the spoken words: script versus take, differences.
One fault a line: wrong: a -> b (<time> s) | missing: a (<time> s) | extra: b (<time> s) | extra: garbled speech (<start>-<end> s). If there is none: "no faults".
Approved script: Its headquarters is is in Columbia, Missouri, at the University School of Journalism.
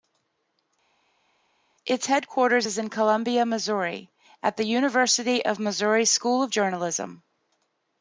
missing: is (2.8 s)
extra: of Missouri (5.4 s)